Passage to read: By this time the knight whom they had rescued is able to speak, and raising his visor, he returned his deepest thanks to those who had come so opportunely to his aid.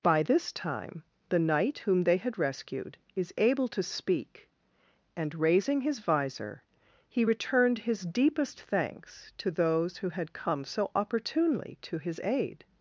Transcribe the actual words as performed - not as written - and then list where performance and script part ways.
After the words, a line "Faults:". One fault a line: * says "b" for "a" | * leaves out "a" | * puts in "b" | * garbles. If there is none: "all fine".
By this time the knight whom they had rescued is able to speak, and raising his visor, he returned his deepest thanks to those who had come so opportunely to his aid.
Faults:
all fine